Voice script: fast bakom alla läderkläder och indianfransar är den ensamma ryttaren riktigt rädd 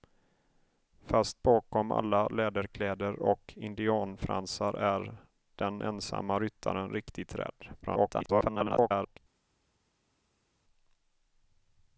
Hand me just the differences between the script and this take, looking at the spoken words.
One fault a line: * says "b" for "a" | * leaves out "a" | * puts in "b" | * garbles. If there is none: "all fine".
* garbles